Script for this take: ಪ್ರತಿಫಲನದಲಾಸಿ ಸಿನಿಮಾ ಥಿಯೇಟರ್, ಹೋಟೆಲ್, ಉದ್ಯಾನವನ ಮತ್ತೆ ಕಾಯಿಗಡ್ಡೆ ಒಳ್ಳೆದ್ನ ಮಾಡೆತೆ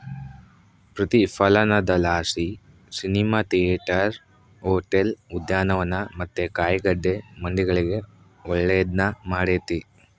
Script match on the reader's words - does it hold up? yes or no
no